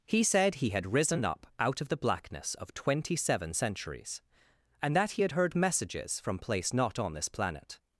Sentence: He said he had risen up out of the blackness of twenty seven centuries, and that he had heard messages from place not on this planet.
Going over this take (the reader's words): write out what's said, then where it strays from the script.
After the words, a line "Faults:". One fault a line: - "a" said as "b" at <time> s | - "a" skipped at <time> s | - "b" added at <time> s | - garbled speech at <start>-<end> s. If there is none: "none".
He said he had risen up out of the blackness of twenty seven centuries, and that he had heard messages from place not on this planet.
Faults:
none